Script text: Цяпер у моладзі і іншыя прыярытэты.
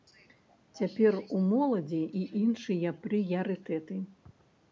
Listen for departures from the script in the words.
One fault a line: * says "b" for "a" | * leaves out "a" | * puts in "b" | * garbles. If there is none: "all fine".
all fine